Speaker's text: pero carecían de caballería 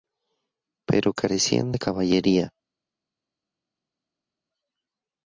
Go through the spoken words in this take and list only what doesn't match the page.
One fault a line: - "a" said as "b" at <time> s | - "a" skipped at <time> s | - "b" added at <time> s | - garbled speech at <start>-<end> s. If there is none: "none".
none